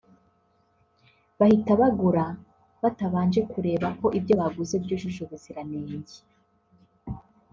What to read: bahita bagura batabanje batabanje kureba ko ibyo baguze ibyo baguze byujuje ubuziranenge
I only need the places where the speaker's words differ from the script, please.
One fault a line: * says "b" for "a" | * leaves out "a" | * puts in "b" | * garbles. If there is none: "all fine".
* leaves out "batabanje"
* leaves out "ibyo baguze"